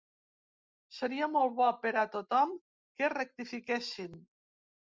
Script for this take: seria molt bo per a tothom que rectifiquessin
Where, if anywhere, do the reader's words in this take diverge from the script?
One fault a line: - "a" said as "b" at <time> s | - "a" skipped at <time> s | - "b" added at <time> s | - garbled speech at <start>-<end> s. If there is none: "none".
none